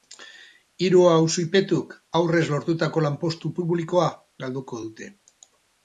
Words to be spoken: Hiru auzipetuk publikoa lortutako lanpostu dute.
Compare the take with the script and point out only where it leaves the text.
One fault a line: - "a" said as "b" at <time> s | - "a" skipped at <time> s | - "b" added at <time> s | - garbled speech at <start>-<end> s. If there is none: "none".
- "publikoa" said as "aurrez" at 2.2 s
- "publikoa galduko" added at 3.6 s